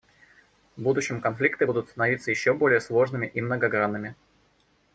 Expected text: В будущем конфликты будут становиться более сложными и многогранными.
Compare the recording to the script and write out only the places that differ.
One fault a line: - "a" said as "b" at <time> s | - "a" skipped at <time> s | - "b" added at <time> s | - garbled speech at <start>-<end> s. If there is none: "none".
- "еще" added at 2.3 s